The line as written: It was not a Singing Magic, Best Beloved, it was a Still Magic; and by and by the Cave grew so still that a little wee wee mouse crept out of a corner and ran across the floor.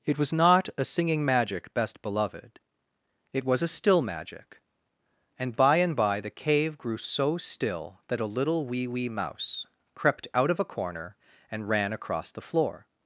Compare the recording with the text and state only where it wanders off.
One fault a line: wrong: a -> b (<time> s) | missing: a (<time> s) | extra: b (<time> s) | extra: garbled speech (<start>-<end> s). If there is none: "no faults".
no faults